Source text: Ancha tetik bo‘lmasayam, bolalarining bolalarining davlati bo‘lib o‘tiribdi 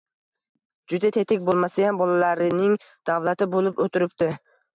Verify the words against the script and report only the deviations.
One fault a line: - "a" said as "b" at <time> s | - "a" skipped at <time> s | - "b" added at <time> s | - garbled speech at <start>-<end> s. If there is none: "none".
- "Ancha" said as "Juda" at 0.9 s
- "bolalarining" skipped at 2.8 s